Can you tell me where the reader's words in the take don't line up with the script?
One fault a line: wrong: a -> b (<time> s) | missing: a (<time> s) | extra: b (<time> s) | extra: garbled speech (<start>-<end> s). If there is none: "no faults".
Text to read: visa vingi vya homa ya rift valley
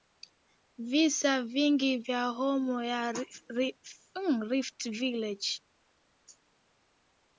no faults